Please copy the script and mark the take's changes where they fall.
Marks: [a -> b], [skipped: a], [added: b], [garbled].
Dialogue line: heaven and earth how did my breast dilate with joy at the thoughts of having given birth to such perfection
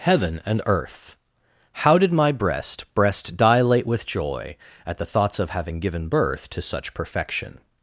heaven and earth how did my breast [added: breast] dilate with joy at the thoughts of having given birth to such perfection